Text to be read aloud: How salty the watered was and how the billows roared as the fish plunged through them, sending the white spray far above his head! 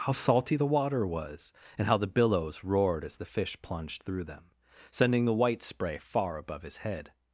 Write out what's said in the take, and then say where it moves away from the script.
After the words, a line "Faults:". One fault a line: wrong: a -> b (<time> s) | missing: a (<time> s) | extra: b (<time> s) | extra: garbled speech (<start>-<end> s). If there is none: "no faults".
How salty the water was and how the billows roared as the fish plunged through them, sending the white spray far above his head!
Faults:
wrong: watered -> water (0.7 s)